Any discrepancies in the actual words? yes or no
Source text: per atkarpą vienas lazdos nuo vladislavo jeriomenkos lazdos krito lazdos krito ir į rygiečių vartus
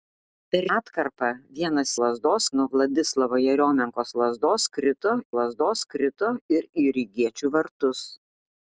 no